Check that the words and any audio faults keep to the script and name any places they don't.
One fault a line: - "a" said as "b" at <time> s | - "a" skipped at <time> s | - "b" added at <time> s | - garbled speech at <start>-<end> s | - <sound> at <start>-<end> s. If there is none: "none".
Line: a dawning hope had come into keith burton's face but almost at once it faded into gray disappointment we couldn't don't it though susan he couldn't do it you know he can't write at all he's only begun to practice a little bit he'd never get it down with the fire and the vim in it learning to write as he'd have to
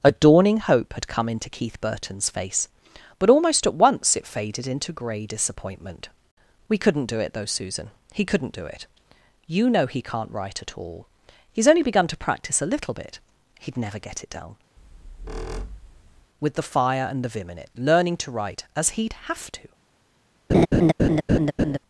- "don't" said as "do" at 7.0 s
- squeak at 14.8-16.3 s
- laugh at 20.5-21.8 s